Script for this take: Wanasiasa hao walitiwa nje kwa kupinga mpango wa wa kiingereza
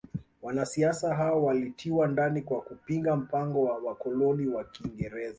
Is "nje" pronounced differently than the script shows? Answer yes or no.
yes